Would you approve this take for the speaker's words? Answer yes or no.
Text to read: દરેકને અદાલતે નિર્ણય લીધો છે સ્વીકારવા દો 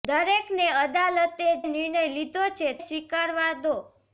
yes